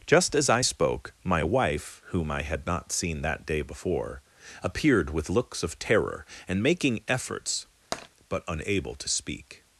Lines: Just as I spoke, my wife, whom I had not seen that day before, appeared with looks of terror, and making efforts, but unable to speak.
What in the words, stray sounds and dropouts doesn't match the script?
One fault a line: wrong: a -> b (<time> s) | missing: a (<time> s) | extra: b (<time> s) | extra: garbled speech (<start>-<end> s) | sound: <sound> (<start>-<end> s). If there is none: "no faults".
sound: tap (7.9-8.1 s)